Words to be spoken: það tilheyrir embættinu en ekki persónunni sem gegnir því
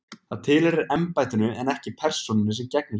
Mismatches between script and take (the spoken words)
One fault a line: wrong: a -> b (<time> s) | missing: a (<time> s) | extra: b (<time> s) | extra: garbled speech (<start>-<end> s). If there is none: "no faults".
no faults